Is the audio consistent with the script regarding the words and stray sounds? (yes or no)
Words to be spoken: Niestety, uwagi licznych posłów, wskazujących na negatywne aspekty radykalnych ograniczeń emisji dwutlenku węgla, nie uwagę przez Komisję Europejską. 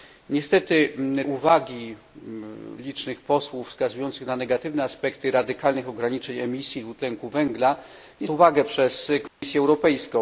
no